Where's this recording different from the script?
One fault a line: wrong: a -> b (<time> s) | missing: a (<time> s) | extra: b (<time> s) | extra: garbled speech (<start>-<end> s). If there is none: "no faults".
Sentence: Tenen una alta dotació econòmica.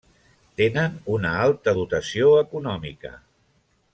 no faults